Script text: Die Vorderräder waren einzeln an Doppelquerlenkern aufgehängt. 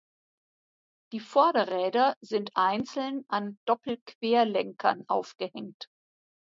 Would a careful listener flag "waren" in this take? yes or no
yes